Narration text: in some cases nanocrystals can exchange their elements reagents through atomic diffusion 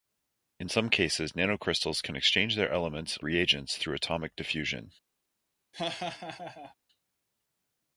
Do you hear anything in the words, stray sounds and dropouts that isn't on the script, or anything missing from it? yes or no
yes